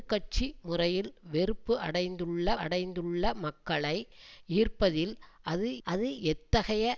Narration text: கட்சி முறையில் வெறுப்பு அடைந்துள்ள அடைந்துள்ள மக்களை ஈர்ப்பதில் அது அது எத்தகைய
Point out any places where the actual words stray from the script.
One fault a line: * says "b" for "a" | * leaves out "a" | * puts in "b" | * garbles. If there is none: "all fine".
all fine